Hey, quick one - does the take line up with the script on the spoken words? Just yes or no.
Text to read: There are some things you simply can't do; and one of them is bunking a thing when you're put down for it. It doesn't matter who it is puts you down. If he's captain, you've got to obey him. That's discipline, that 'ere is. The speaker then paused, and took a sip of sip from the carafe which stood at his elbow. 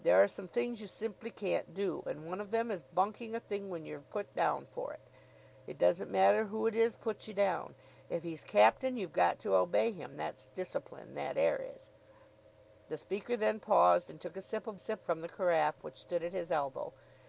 yes